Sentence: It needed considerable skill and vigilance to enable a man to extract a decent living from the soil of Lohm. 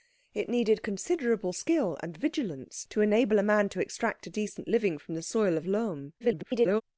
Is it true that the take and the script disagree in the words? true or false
true